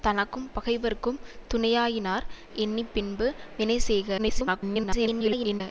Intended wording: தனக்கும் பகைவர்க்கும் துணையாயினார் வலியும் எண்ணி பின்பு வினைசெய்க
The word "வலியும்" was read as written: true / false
false